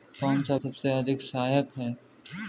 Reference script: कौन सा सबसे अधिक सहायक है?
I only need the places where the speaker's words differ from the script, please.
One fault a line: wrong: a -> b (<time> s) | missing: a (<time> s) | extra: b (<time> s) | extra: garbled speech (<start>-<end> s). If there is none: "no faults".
no faults